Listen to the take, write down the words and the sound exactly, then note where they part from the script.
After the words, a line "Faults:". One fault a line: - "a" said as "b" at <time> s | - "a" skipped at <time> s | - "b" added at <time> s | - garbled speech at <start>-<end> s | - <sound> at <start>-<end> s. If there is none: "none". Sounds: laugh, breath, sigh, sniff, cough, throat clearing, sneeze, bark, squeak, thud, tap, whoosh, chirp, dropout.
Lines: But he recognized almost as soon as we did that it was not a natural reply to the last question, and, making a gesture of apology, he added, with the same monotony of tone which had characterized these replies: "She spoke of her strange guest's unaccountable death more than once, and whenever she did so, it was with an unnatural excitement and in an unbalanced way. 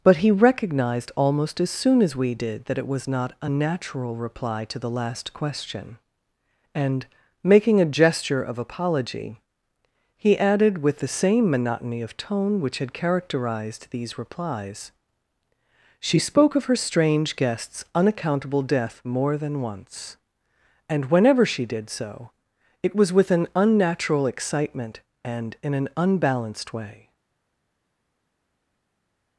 But he recognized almost as soon as we did that it was not a natural reply to the last question, and, making a gesture of apology, he added, with the same monotony of tone which had characterized these replies: "She spoke of her strange guest's unaccountable death more than once, and whenever she did so, it was with an unnatural excitement and in an unbalanced way.
Faults:
none